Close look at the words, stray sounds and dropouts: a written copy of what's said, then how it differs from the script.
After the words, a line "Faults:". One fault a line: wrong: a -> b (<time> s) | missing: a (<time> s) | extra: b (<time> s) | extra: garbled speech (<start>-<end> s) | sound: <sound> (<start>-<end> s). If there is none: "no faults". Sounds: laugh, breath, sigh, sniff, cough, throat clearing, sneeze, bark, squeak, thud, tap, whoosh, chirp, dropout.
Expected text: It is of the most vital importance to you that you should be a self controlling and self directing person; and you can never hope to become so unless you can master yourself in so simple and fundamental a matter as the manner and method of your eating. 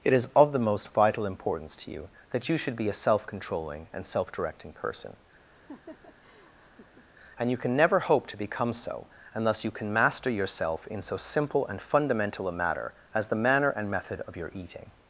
It is of the most vital importance to you that you should be a self controlling and self directing person; and you can never hope to become so unless you can master yourself in so simple and fundamental a matter as the manner and method of your eating.
Faults:
sound: laugh (5.5-7.1 s)